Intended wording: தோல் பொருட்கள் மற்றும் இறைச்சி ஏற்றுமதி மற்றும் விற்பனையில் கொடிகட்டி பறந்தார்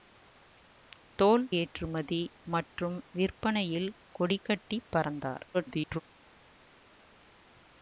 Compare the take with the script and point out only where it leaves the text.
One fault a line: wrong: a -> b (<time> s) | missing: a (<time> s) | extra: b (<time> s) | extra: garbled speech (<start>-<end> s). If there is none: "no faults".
missing: பொருட்கள் மற்றும் இறைச்சி (1.4 s)
extra: garbled speech (5.5-6.0 s)